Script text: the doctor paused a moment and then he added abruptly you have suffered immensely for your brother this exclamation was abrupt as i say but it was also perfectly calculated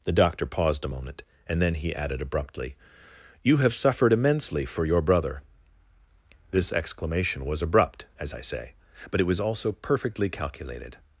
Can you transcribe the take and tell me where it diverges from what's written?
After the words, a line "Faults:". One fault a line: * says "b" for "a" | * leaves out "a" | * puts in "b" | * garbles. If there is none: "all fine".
the doctor paused a moment and then he added abruptly you have suffered immensely for your brother this exclamation was abrupt as i say but it was also perfectly calculated
Faults:
all fine